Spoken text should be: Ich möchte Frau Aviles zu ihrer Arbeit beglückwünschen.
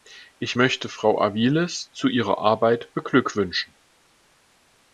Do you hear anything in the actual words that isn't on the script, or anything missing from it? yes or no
no